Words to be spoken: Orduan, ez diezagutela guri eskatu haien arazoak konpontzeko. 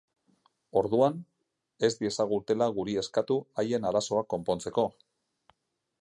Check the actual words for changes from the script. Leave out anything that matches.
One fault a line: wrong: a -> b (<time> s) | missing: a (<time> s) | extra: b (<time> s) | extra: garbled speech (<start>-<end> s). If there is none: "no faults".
no faults